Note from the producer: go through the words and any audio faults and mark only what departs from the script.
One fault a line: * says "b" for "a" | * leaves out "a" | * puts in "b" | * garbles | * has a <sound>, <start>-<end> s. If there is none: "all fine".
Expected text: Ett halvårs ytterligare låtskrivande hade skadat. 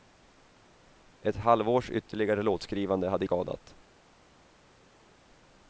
all fine